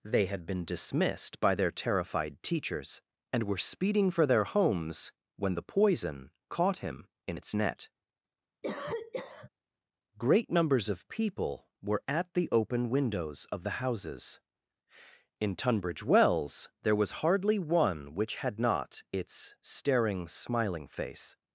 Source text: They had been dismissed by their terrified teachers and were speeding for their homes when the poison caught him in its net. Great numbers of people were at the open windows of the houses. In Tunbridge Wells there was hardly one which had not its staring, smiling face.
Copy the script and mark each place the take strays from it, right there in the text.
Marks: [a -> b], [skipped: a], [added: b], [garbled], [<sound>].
They had been dismissed by their terrified teachers and were speeding for their homes when the poison caught him in its net. [cough] Great numbers of people were at the open windows of the houses. In Tunbridge Wells there was hardly one which had not its staring, smiling face.